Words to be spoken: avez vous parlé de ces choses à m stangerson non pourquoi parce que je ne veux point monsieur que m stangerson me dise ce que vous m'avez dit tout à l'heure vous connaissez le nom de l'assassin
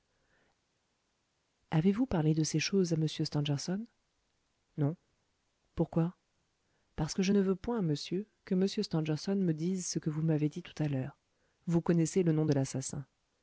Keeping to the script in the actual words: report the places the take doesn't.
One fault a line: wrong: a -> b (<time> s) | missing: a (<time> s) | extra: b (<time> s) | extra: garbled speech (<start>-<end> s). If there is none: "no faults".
no faults